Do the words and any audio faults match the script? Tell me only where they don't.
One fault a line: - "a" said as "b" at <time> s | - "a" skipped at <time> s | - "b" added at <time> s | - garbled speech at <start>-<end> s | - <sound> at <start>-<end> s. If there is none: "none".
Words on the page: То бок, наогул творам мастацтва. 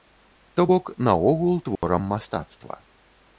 - dropout at 1.8-1.8 s